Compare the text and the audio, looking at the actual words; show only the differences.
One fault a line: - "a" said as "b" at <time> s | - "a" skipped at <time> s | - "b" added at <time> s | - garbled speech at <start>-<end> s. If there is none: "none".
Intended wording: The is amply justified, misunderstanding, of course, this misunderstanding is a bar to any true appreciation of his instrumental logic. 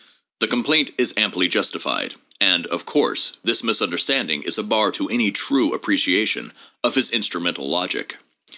- "complaint" added at 0.5 s
- "misunderstanding" said as "and" at 2.4 s